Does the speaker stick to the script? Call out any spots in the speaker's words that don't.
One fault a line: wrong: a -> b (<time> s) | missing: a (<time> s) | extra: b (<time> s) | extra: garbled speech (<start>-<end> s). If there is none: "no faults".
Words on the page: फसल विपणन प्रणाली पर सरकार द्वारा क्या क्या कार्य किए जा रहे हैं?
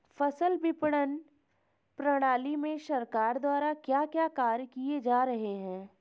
wrong: पर -> में (2.5 s)